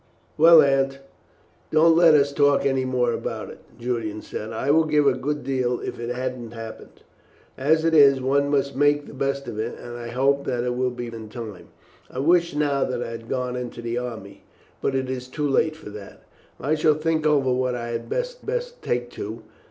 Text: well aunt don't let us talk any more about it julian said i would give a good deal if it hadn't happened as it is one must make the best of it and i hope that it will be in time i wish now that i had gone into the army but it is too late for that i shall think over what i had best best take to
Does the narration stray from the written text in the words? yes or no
no